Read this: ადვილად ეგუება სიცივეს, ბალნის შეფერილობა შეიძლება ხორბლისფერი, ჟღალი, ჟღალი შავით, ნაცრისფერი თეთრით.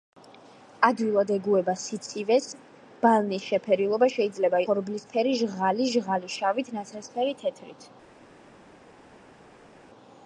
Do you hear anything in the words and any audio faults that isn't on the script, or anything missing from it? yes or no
no